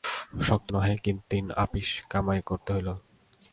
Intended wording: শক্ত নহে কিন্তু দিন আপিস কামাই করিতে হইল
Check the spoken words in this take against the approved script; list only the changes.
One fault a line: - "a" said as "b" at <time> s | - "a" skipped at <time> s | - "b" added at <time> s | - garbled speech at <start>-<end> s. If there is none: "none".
none